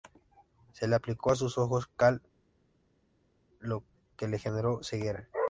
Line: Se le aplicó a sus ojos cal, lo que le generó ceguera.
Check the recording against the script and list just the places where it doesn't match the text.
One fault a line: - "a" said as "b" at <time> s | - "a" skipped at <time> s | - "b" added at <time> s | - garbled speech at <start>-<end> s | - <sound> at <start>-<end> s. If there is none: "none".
none